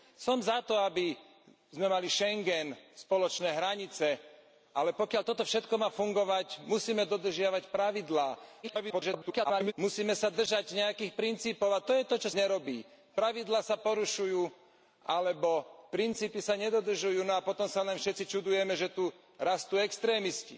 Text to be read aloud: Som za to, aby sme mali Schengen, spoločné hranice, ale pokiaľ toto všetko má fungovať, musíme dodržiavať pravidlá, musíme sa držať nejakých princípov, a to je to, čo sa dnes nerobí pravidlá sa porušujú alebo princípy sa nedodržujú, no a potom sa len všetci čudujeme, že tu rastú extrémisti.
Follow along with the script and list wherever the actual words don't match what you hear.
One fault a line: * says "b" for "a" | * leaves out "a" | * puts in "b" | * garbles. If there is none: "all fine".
* garbles
* leaves out "sa dnes"